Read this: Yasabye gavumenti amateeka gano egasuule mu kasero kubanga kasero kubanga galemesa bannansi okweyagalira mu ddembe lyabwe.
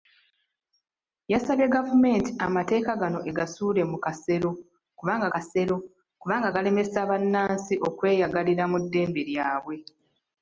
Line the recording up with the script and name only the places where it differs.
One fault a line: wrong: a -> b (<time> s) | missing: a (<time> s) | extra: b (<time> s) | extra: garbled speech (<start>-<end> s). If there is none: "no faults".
no faults